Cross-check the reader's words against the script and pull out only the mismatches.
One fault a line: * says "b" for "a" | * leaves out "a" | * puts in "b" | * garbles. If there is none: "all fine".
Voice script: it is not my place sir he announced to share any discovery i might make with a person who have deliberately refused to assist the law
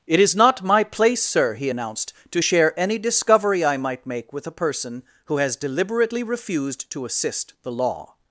* says "has" for "have"